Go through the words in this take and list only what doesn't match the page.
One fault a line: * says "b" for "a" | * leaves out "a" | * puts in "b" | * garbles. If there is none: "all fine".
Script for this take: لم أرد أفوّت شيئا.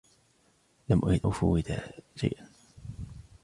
all fine